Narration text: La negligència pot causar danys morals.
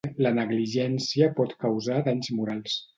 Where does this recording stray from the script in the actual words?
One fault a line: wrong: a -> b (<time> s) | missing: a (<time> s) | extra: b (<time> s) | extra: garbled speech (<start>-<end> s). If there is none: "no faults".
no faults